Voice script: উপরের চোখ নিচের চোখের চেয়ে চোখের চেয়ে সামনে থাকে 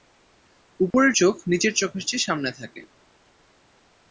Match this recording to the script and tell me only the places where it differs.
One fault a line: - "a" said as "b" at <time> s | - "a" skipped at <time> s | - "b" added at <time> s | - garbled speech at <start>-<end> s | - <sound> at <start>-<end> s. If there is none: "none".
- dropout at 0.9-0.9 s
- "চোখের চেয়ে" skipped at 2.3 s